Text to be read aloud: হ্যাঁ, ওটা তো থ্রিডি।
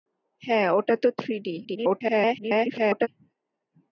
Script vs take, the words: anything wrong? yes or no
yes